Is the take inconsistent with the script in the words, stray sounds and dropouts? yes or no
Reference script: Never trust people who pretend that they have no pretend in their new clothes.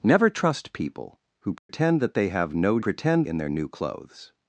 yes